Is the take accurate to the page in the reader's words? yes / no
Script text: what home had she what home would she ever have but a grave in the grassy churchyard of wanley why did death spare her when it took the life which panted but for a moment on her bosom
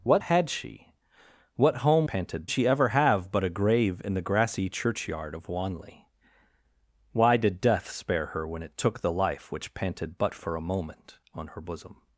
no